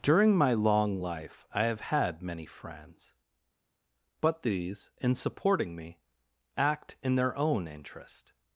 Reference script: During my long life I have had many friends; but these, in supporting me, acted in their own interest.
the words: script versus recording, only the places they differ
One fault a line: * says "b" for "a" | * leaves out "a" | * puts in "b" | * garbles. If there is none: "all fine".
* says "act" for "acted"